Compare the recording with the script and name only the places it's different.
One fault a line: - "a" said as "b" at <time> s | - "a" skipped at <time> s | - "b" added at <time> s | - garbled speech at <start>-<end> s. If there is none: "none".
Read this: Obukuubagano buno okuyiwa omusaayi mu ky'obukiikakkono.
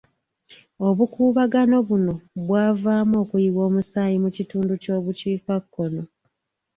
- "bwavaamu" added at 2.5 s
- "kitundu" added at 4.3 s